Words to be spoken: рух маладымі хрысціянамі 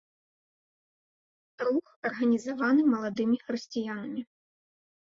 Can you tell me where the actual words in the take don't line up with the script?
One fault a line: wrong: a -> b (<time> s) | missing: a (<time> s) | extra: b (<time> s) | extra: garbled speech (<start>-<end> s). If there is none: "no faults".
extra: арганізаваны (2.1 s)